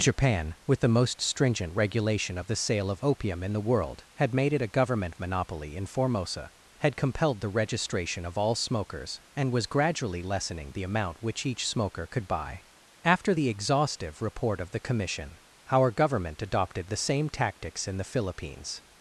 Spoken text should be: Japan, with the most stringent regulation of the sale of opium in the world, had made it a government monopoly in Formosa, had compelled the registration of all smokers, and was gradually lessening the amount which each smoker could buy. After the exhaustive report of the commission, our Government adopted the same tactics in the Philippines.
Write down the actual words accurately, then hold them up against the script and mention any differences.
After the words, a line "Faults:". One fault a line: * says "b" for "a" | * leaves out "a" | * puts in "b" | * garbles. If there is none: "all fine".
Japan, with the most stringent regulation of the sale of opium in the world, had made it a government monopoly in Formosa, had compelled the registration of all smokers, and was gradually lessening the amount which each smoker could buy. After the exhaustive report of the commission, our Government adopted the same tactics in the Philippines.
Faults:
all fine